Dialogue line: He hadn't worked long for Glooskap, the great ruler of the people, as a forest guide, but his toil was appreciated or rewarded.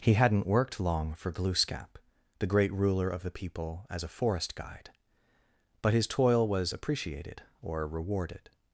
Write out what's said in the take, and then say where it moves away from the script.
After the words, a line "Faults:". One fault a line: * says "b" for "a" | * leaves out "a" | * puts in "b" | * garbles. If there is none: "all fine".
He hadn't worked long for Glooskap, the great ruler of the people, as a forest guide, but his toil was appreciated or rewarded.
Faults:
all fine